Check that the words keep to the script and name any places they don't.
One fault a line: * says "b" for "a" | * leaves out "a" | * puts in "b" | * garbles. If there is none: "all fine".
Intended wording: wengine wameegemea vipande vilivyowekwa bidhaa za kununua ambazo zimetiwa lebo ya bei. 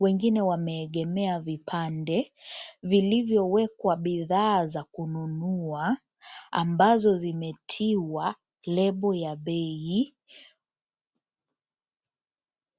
all fine